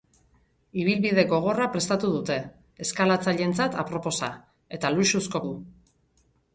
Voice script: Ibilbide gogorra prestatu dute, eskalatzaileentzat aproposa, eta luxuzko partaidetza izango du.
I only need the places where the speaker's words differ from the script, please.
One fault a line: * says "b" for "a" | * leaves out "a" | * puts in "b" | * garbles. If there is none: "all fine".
* leaves out "partaidetza izango"